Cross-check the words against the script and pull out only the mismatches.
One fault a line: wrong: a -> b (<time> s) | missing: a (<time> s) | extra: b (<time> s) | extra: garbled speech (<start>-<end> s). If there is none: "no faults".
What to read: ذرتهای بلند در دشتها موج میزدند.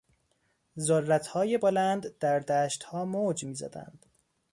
no faults